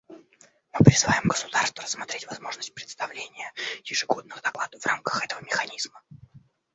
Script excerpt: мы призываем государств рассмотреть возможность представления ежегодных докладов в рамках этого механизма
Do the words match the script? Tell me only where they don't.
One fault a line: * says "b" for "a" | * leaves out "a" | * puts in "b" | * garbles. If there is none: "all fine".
all fine